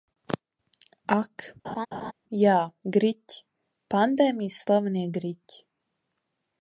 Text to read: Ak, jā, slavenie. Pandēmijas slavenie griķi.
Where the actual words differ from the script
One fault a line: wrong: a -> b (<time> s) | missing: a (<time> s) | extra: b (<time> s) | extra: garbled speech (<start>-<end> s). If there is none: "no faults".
wrong: slavenie -> griķi (3.0 s)